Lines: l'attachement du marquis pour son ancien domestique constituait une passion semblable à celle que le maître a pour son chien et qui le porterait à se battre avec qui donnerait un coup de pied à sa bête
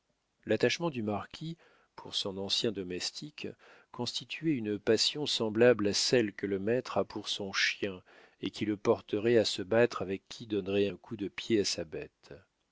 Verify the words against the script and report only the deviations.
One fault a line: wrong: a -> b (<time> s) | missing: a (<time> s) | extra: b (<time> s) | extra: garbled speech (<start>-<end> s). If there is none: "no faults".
no faults